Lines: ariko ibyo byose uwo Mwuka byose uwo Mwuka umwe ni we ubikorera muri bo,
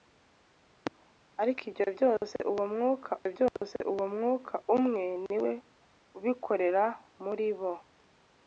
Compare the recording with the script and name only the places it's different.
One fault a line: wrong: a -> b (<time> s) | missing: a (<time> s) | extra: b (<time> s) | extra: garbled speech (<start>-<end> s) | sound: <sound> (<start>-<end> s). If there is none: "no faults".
sound: dropout (3.5-3.6 s)